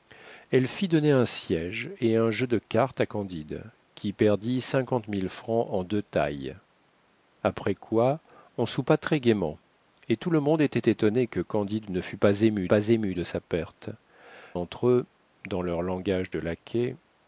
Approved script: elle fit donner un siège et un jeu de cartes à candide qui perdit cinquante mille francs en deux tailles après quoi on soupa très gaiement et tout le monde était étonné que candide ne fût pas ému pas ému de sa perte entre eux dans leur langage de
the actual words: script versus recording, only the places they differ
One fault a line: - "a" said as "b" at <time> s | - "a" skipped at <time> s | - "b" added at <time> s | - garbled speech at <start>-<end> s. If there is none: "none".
none